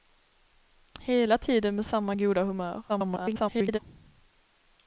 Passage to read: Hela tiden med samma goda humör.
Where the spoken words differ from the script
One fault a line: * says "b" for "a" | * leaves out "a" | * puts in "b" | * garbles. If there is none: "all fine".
* garbles